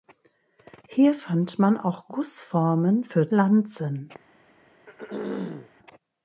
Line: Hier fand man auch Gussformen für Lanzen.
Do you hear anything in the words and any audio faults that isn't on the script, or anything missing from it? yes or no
yes